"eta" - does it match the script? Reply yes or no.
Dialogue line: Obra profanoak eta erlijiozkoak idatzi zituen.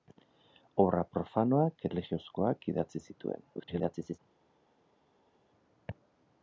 no